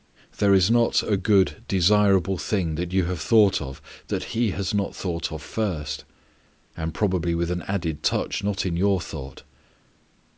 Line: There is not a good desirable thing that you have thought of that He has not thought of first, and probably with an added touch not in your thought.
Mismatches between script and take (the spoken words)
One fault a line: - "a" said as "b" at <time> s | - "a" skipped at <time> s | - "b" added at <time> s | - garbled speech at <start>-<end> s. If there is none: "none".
none